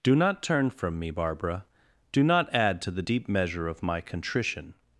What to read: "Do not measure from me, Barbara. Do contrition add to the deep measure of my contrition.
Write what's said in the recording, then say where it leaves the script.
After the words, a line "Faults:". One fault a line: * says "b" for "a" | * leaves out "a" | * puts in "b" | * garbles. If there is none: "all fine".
"Do not turn from me, Barbara. Do not add to the deep measure of my contrition.
Faults:
* says "turn" for "measure"
* says "not" for "contrition"